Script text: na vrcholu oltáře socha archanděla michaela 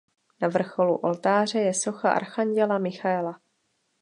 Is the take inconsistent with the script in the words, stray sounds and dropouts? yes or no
yes